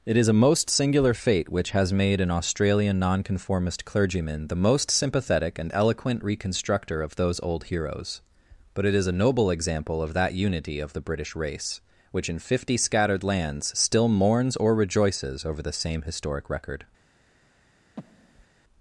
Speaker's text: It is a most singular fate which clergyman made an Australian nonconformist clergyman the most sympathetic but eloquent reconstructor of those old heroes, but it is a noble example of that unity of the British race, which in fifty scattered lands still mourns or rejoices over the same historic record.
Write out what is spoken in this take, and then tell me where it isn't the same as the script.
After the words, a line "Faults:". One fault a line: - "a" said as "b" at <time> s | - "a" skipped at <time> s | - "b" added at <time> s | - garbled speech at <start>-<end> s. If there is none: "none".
It is a most singular fate which has made an Australian nonconformist clergyman the most sympathetic and eloquent reconstructor of those old heroes, but it is a noble example of that unity of the British race, which in fifty scattered lands still mourns or rejoices over the same historic record.
Faults:
- "clergyman" said as "has" at 1.7 s
- "but" said as "and" at 5.6 s